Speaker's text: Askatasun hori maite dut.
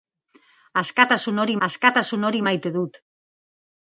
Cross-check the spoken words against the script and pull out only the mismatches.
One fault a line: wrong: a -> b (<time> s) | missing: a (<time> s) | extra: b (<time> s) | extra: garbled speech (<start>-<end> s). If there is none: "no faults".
extra: askatasun hori (1.7 s)